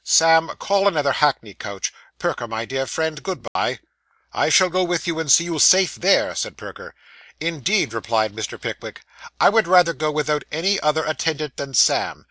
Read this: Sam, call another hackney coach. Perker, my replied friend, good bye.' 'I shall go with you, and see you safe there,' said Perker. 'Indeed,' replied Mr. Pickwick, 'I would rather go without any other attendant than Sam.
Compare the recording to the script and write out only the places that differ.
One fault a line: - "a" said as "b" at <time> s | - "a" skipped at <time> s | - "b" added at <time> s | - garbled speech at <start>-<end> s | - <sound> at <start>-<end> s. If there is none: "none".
- "replied" said as "dear" at 2.6 s
- dropout at 3.5-3.6 s